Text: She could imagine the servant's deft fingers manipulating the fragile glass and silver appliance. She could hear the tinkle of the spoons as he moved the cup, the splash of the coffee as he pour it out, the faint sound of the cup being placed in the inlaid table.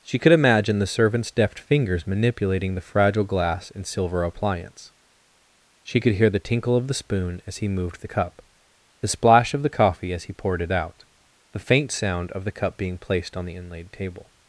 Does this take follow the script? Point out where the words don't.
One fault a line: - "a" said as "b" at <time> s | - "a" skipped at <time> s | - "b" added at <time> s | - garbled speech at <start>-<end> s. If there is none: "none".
- "spoons" said as "spoon" at 7.0 s
- "pour" said as "poured" at 10.3 s
- "in" said as "on" at 13.4 s